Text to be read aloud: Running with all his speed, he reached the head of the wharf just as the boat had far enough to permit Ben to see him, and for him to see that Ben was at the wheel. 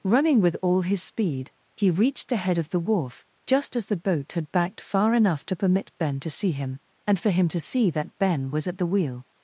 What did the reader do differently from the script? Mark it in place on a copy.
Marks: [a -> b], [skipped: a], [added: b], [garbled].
Running with all his speed, he reached the head of the wharf just as the boat had [added: backed] far enough to permit Ben to see him, and for him to see that Ben was at the wheel.